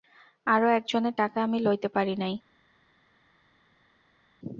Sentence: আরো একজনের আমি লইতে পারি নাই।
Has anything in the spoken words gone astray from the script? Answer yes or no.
yes